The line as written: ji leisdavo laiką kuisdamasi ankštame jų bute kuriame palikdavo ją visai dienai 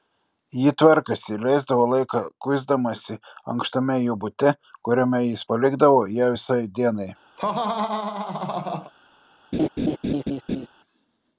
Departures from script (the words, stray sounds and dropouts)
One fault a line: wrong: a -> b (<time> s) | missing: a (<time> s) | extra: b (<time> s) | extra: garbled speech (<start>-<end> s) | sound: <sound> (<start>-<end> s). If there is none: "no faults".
extra: tvarkėsi (0.8 s)
extra: jis (5.3 s)
sound: laugh (7.4-8.9 s)
sound: laugh (9.5-10.7 s)